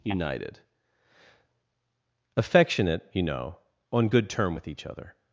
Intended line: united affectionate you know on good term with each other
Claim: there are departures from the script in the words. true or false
false